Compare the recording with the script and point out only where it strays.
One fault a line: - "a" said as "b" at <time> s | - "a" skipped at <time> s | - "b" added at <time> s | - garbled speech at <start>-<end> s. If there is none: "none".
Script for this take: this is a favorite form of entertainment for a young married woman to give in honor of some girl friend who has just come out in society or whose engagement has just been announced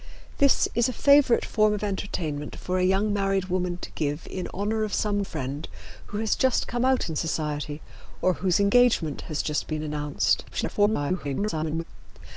- "girl" skipped at 5.2 s
- garbled speech at 10.5-11.8 s